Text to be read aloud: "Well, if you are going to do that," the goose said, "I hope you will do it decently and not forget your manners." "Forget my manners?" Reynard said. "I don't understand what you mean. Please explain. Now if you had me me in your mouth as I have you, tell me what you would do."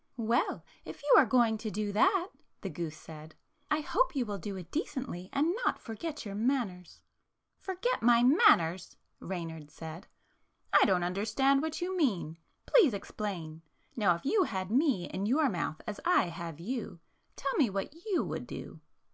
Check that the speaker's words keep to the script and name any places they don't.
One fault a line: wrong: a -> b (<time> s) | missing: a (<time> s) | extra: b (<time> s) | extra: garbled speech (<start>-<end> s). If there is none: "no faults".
missing: me (15.1 s)